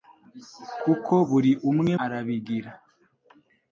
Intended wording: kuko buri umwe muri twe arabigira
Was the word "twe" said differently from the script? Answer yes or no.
yes